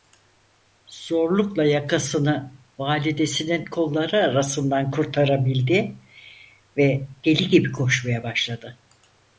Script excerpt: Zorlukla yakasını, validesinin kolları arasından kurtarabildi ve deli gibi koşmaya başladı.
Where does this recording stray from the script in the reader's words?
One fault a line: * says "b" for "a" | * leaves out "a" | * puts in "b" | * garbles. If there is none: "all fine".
all fine